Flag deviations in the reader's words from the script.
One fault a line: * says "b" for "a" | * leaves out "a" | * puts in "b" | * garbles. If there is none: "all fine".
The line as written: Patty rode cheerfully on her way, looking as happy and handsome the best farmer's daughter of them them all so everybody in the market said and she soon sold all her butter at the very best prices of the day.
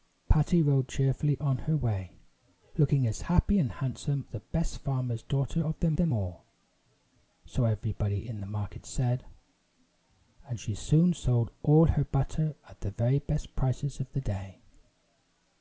all fine